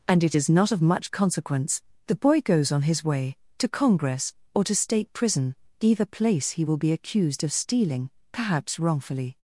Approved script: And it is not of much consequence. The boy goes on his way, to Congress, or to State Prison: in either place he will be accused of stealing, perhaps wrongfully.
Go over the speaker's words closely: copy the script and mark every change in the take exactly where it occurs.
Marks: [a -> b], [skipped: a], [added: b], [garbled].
And it is not of much consequence. The boy goes on his way, to Congress, or to State Prison: [skipped: in] either place he will be accused of stealing, perhaps wrongfully.